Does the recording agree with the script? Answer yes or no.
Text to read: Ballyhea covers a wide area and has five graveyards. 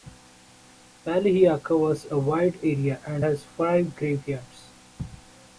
yes